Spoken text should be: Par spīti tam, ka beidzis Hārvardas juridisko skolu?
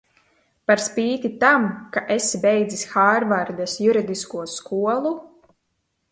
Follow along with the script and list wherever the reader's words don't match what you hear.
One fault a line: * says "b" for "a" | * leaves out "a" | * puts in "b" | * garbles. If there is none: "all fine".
* puts in "esi"